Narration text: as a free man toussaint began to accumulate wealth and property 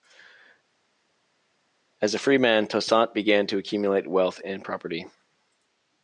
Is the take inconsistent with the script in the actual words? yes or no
no